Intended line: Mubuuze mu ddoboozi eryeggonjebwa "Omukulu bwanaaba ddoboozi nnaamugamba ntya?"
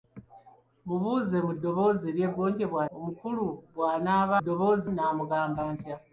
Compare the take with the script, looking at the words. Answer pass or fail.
pass